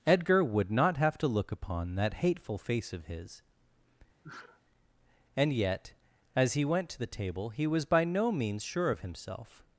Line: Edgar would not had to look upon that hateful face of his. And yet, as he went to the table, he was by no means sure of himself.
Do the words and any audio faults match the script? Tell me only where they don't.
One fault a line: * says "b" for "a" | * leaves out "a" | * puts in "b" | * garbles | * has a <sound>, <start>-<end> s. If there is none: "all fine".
* says "have" for "had"
* has a sneeze, 4.2-4.6 s